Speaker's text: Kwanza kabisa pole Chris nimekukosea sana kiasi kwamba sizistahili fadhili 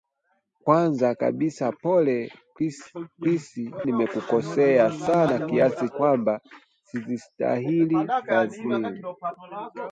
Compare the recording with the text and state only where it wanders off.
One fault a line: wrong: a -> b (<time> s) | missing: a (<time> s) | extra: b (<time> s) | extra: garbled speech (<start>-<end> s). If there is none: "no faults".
no faults